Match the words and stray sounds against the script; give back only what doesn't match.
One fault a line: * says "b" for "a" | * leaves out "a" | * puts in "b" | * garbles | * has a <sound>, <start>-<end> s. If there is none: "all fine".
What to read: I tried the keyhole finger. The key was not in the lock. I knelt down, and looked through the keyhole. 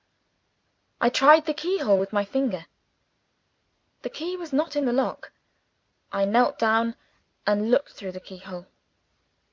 * puts in "with my"